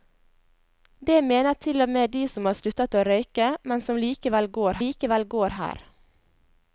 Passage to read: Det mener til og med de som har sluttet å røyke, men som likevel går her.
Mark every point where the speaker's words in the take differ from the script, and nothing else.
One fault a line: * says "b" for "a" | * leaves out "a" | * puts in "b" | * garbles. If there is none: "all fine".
* puts in "likevel går"